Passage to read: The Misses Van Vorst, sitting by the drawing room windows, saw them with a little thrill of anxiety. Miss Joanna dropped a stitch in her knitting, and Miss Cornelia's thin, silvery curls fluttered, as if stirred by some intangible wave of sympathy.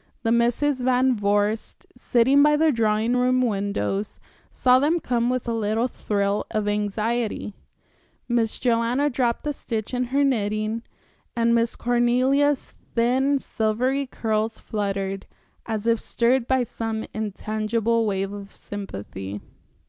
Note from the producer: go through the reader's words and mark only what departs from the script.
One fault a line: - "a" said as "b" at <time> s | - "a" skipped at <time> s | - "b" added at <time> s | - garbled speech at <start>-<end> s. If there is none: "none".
- "come" added at 5.0 s